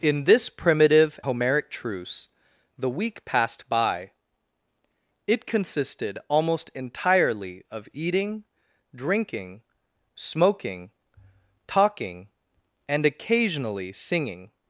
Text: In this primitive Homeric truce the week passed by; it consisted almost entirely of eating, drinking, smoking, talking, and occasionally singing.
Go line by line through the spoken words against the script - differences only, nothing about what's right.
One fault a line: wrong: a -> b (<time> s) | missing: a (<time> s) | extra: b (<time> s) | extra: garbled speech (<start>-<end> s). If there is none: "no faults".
no faults